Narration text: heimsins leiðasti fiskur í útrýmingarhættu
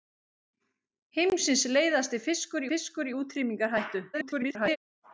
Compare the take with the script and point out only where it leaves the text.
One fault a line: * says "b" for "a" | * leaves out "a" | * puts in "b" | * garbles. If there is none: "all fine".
* puts in "fiskur"
* garbles